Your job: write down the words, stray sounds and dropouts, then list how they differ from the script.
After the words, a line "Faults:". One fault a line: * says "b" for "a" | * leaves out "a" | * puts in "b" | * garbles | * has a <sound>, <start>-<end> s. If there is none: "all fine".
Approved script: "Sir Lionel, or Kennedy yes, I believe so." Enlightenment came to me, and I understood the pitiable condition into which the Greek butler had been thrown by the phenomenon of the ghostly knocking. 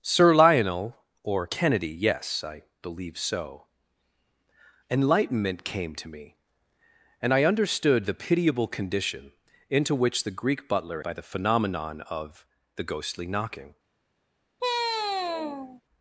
"Sir Lionel, or Kennedy yes, I believe so." Enlightenment came to me, and I understood the pitiable condition into which the Greek butler by the phenomenon of the ghostly knocking.
Faults:
* leaves out "had been thrown"
* has a sigh, 14.6-15.8 s